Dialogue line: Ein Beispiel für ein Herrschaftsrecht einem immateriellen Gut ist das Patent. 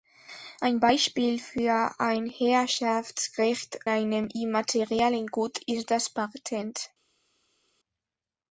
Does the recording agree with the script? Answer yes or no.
yes